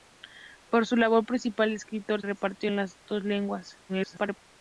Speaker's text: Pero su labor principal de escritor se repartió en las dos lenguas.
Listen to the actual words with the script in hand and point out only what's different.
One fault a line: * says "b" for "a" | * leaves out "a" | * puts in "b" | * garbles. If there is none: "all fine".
* leaves out "se"
* garbles